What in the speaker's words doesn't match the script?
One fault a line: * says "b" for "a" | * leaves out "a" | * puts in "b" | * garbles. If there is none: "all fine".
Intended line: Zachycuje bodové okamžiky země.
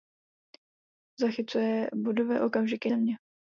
all fine